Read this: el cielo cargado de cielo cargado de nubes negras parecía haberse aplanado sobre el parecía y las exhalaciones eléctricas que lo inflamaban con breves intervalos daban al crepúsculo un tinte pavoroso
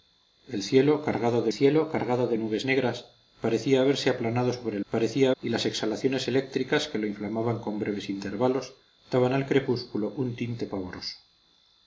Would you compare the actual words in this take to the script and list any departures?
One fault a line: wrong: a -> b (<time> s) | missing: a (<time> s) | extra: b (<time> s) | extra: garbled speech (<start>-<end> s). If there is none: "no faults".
no faults